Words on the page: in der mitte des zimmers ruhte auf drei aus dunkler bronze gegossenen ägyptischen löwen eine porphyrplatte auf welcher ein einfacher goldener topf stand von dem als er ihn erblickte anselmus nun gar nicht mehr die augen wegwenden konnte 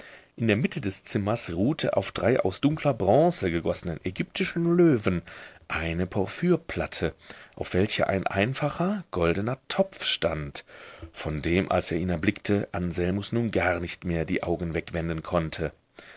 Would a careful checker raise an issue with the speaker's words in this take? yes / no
no